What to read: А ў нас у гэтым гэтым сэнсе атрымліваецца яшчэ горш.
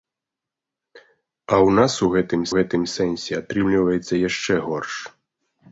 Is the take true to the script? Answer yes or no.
yes